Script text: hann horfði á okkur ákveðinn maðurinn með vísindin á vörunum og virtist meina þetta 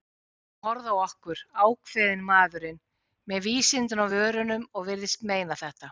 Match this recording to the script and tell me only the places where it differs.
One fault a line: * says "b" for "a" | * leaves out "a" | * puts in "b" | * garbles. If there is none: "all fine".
all fine